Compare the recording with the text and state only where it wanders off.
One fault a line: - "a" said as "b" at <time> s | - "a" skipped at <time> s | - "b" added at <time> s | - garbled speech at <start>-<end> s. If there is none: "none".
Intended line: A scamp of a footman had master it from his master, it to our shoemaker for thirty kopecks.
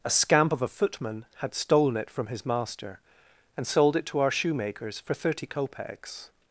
- "master" said as "stolen" at 1.5 s
- "and sold" added at 3.5 s
- "shoemaker" said as "shoemakers" at 4.3 s